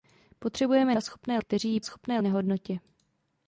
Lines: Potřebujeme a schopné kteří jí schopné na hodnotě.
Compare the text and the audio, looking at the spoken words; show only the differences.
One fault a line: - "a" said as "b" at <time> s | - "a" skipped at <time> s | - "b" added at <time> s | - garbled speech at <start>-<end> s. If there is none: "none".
none